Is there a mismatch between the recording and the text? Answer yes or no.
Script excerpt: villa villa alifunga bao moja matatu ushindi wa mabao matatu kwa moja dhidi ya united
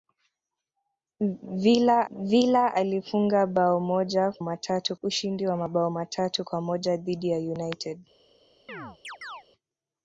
no